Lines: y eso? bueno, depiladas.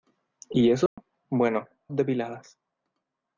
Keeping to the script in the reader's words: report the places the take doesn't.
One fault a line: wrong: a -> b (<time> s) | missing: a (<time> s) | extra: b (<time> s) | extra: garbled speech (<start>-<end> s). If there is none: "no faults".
no faults